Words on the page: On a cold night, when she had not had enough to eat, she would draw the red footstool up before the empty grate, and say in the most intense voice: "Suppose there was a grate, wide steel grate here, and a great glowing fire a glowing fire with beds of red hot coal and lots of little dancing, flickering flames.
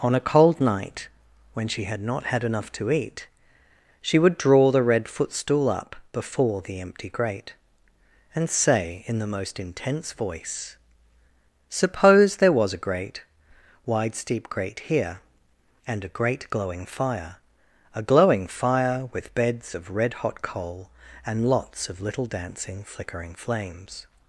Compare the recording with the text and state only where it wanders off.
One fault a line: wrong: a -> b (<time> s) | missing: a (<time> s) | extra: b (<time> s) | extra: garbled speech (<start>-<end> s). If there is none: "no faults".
wrong: steel -> steep (14.2 s)